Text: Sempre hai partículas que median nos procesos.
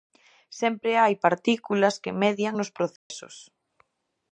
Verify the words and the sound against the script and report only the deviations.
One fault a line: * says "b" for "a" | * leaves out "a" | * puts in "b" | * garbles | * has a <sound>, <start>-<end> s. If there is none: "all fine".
* has a dropout, 3.0-3.1 s